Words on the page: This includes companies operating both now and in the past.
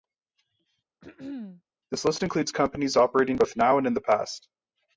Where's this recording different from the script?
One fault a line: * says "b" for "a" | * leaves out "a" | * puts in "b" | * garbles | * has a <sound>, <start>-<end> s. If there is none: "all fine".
* has a throat clearing, 1.0-1.6 s
* puts in "list"